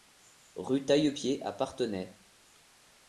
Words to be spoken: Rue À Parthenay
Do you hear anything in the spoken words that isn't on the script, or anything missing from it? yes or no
yes